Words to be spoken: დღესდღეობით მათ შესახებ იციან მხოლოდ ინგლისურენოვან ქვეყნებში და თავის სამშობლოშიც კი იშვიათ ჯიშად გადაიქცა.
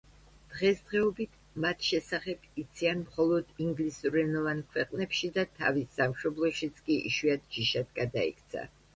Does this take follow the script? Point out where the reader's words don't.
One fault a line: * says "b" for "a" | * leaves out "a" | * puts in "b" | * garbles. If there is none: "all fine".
all fine